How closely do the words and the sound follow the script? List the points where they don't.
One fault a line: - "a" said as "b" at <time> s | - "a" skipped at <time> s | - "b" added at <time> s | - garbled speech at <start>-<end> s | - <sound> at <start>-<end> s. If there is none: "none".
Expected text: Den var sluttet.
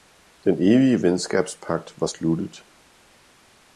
- "evige venskabspagt" added at 0.5 s